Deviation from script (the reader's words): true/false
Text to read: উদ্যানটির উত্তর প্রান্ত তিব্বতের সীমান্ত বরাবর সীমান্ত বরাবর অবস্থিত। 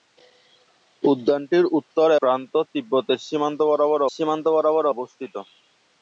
false